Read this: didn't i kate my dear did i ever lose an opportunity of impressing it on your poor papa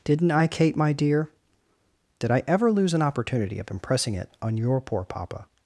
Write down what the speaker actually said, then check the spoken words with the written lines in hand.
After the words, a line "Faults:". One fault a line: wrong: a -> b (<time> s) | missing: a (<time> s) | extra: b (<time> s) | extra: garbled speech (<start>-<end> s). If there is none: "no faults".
didn't i kate my dear did i ever lose an opportunity of impressing it on your poor papa
Faults:
no faults